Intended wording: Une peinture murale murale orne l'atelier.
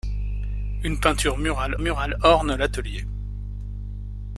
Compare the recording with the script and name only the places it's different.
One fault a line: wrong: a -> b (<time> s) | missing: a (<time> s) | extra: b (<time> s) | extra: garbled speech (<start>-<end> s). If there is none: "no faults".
no faults